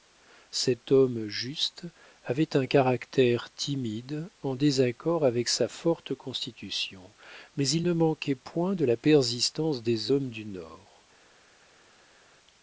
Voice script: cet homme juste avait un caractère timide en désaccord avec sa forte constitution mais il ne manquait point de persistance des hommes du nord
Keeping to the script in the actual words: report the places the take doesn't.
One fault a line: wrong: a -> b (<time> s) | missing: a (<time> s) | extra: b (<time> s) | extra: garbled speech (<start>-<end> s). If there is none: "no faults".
extra: la (8.8 s)